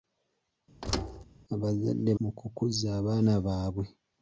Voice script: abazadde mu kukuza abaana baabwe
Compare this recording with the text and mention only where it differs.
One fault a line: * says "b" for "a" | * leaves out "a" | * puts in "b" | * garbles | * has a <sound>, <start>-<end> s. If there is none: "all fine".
* has a thud, 0.8-1.2 s